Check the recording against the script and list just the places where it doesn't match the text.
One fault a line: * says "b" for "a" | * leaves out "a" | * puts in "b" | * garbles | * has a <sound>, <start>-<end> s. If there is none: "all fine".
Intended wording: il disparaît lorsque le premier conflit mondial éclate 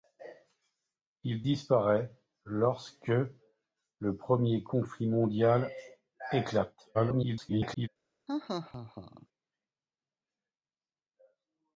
* garbles
* has a laugh, 8.3-9.3 s